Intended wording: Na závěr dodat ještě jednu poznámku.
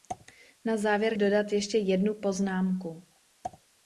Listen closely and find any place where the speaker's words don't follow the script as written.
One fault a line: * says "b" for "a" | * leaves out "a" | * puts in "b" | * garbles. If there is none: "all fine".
all fine